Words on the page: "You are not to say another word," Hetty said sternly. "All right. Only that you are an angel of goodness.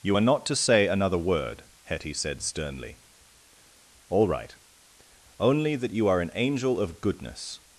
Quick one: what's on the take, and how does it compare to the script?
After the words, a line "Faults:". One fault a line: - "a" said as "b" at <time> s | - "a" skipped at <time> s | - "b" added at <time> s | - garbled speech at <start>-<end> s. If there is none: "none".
"You are not to say another word," Hetty said sternly. "All right. Only that you are an angel of goodness.
Faults:
none